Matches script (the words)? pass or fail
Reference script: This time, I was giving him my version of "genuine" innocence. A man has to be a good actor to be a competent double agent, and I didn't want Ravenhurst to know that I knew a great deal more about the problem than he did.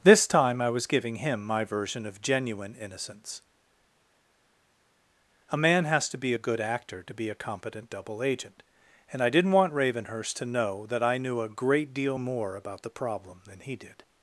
pass